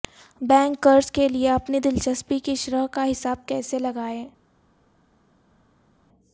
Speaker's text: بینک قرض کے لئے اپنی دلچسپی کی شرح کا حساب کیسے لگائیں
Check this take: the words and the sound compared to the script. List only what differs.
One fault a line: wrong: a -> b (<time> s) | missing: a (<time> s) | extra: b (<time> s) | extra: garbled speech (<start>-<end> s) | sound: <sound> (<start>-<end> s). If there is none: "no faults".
no faults